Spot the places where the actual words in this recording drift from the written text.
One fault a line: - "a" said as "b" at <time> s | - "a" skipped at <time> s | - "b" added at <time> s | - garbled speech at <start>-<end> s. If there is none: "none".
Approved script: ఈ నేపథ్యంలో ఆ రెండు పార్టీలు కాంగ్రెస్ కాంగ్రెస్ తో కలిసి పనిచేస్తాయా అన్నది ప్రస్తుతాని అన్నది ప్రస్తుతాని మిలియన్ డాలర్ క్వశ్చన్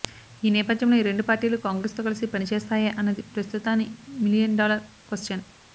- "ఆ" said as "ఈ" at 1.0 s
- "కాంగ్రెస్" skipped at 2.0 s
- "అన్నది ప్రస్తుతాని" skipped at 3.9 s